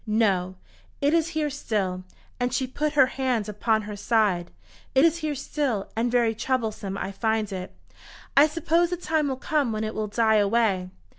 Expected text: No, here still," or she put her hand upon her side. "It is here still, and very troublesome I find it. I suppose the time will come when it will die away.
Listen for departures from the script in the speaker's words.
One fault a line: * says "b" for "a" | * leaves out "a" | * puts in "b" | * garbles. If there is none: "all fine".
* puts in "it is"
* says "and" for "or"